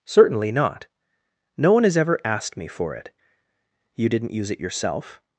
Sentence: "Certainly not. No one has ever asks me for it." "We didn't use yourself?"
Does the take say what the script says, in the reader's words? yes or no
no